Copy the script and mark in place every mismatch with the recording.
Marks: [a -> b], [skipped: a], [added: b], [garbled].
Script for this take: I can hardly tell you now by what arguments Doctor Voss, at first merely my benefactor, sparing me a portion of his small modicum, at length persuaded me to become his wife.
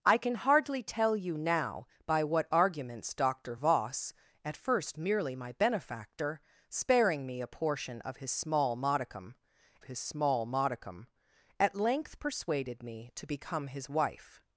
I can hardly tell you now by what arguments Doctor Voss, at first merely my benefactor, sparing me a portion of his small modicum, [added: his small modicum] at length persuaded me to become his wife.